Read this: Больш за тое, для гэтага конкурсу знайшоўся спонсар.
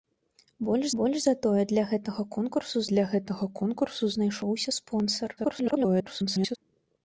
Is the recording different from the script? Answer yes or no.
yes